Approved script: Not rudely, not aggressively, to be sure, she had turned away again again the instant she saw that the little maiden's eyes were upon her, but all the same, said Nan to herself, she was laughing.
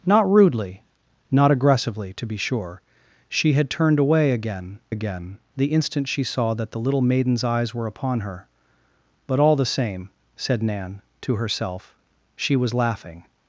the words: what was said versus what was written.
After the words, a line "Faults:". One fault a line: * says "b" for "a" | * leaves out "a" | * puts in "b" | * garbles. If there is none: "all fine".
Not rudely, not aggressively, to be sure, she had turned away again again the instant she saw that the little maiden's eyes were upon her, but all the same, said Nan to herself, she was laughing.
Faults:
all fine